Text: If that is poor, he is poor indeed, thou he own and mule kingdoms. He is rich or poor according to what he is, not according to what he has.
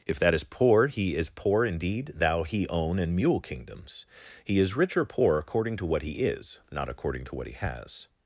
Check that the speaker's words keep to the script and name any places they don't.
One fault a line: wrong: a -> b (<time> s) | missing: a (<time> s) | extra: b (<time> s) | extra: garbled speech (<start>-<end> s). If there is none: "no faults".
no faults